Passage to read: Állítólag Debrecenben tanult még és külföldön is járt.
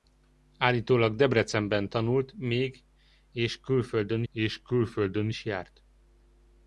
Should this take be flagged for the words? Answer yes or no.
yes